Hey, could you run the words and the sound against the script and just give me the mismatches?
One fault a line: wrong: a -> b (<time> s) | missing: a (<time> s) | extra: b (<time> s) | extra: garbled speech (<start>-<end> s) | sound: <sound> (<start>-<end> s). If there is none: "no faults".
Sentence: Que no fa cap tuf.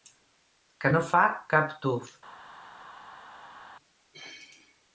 no faults